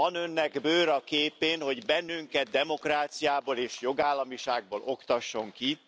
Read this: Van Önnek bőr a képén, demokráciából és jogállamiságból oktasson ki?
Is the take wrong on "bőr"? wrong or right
right